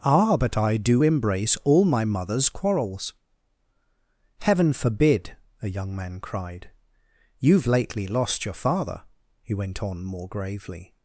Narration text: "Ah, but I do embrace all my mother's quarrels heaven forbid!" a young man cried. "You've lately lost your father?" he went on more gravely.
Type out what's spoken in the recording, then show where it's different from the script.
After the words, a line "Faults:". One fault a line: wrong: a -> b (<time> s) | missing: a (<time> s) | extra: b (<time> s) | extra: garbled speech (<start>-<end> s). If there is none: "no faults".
"Ah, but I do embrace all my mother's quarrels heaven forbid!" a young man cried. "You've lately lost your father?" he went on more gravely.
Faults:
no faults